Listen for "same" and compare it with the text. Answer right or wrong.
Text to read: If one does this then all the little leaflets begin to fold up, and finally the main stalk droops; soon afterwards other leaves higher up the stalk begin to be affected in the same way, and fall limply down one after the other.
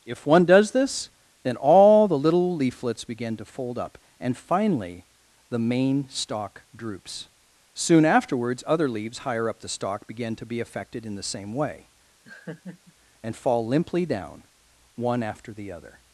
right